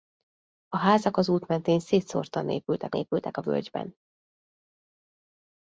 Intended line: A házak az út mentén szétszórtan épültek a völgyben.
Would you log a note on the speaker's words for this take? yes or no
yes